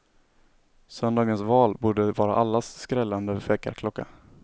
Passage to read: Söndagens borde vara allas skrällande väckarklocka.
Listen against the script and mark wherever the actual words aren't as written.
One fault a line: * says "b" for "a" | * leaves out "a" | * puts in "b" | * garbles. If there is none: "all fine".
* puts in "val"